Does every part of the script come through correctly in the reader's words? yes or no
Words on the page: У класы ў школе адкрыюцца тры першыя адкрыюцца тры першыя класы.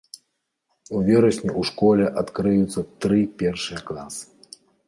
no